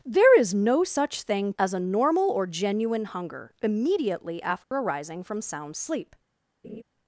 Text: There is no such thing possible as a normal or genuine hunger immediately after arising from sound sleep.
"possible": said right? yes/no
no